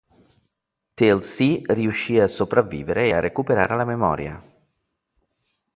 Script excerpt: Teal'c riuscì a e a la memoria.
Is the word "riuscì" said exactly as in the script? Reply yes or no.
yes